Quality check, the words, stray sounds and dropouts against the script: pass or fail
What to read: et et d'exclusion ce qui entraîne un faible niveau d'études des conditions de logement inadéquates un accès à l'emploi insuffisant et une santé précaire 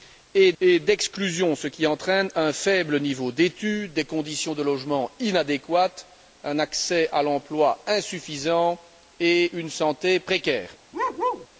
fail